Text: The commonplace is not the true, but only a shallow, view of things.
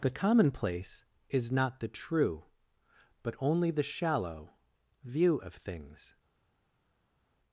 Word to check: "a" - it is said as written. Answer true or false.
false